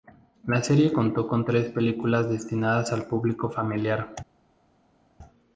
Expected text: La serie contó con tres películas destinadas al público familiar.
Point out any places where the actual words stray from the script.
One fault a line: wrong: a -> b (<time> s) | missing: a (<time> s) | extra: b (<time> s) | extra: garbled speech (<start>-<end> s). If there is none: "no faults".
no faults